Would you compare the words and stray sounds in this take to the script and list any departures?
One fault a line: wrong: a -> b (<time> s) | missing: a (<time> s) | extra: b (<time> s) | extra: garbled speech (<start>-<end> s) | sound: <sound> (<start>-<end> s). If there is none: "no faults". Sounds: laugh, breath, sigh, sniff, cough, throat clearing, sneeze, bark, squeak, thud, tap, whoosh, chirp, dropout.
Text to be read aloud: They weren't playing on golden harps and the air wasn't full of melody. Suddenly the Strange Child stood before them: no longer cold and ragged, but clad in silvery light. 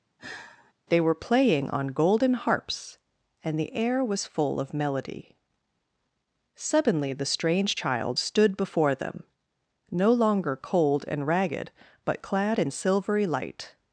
sound: sigh (0.2-0.7 s)
wrong: weren't -> were (1.0 s)
wrong: wasn't -> was (4.0 s)